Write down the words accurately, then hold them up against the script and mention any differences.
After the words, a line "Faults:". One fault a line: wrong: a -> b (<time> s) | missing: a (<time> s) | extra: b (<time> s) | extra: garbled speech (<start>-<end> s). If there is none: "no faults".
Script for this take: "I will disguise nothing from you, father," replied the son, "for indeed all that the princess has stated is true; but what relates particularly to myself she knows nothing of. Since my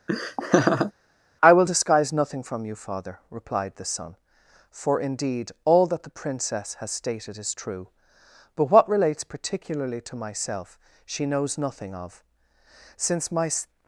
"I will disguise nothing from you, father," replied the son, "for indeed all that the princess has stated is true; but what relates particularly to myself she knows nothing of. Since my
Faults:
no faults